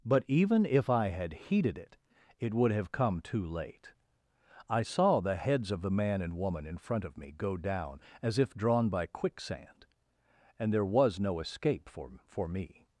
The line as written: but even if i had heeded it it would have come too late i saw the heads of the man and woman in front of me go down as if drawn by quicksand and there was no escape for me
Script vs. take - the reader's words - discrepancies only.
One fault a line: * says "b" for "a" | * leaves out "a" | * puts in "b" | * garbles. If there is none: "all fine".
* puts in "for"